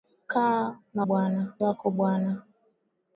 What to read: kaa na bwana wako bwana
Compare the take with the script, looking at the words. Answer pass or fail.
pass